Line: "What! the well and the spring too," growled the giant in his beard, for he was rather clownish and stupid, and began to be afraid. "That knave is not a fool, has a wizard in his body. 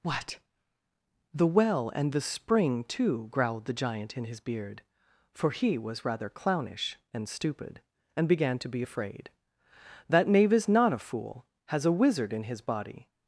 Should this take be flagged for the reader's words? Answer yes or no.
no